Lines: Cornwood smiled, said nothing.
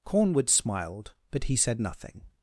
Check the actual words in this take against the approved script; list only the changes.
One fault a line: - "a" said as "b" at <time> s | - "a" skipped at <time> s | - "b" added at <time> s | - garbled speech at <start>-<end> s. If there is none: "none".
- "but he" added at 1.3 s